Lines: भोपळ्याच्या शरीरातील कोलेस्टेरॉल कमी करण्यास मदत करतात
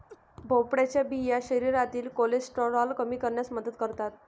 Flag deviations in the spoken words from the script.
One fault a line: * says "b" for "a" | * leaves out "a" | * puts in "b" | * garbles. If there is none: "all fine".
* puts in "बिया"